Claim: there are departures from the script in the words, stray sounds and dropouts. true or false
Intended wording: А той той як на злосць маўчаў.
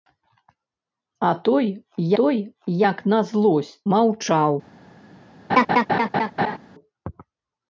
true